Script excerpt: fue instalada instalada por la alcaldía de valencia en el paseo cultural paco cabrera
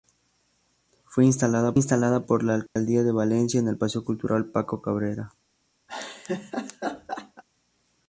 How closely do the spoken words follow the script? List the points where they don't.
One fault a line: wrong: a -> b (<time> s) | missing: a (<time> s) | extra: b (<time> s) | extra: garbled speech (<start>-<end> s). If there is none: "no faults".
no faults